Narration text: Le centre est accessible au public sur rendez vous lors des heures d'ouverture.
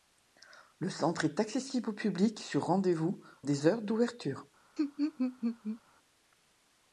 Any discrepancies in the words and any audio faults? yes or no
yes